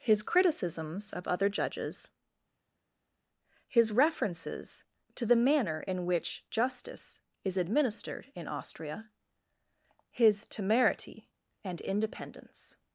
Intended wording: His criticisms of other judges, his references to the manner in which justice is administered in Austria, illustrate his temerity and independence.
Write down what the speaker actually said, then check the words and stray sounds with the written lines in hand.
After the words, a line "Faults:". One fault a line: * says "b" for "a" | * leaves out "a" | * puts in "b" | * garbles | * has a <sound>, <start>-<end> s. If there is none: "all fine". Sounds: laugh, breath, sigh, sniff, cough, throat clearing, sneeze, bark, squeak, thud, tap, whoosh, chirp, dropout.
His criticisms of other judges, his references to the manner in which justice is administered in Austria, his temerity and independence.
Faults:
* leaves out "illustrate"